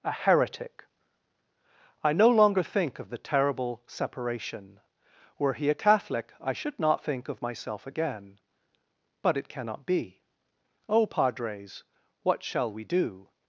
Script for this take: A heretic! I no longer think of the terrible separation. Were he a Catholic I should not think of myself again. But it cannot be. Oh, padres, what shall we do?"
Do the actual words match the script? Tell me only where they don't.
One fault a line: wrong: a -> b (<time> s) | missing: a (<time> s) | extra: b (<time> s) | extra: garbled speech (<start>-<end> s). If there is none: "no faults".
no faults